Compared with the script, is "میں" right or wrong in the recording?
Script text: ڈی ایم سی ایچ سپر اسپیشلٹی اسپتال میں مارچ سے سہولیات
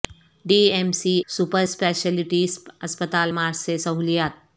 wrong